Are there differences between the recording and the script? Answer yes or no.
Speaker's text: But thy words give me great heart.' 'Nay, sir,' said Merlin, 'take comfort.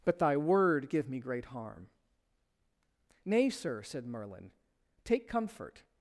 yes